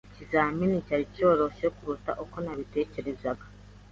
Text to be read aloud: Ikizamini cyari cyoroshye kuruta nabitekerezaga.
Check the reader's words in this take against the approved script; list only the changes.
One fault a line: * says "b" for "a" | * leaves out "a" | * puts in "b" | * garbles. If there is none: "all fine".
* puts in "uko"